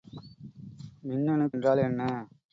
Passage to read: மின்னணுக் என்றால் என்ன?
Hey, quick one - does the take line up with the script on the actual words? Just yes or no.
yes